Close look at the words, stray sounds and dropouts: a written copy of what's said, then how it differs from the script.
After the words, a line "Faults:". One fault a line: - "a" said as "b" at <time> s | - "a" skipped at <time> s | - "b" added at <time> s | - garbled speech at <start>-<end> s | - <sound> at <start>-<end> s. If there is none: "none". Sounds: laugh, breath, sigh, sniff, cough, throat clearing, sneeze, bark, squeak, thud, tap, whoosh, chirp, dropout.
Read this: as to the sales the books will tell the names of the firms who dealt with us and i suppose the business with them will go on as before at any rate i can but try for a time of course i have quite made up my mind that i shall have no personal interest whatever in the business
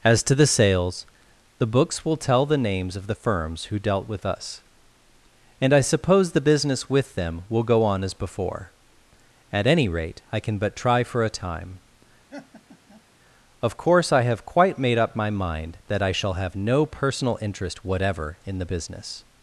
as to the sales the books will tell the names of the firms who dealt with us and i suppose the business with them will go on as before at any rate i can but try for a time of course i have quite made up my mind that i shall have no personal interest whatever in the business
Faults:
- laugh at 12.3-13.0 s